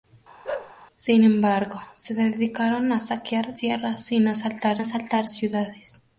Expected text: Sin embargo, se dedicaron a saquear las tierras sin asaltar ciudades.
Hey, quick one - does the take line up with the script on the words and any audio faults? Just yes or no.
no